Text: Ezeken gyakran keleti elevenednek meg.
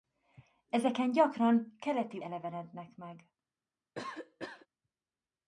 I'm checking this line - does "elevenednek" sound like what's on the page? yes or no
yes